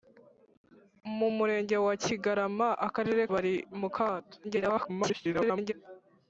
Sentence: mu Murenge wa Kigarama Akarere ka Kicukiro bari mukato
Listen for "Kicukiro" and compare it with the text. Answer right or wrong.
wrong